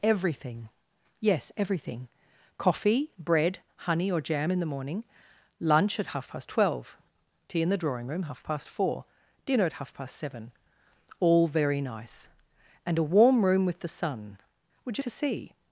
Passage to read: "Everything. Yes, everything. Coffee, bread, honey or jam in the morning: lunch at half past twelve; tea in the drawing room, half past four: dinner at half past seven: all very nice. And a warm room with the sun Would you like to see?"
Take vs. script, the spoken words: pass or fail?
fail